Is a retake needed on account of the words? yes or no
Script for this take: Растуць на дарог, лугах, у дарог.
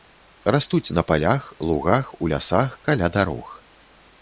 yes